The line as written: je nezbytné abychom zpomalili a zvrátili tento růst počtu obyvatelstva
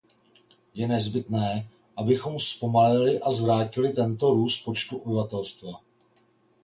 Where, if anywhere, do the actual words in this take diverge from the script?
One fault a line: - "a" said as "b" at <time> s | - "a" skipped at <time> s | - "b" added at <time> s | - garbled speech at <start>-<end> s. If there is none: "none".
none